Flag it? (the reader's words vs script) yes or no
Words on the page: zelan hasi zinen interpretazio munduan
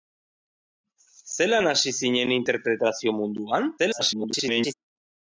yes